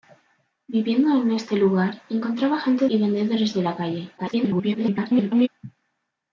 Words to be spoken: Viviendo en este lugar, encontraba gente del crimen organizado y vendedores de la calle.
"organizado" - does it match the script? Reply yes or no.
no